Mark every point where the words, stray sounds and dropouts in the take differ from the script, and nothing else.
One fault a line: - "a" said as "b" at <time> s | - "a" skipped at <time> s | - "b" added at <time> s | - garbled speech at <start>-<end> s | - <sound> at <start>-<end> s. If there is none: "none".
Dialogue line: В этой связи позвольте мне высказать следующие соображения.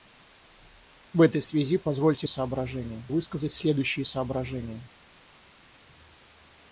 - "мне" said as "соображения" at 2.2 s